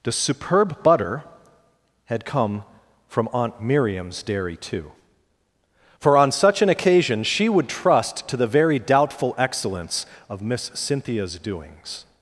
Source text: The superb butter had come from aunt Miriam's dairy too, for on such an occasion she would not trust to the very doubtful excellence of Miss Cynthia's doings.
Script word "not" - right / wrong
wrong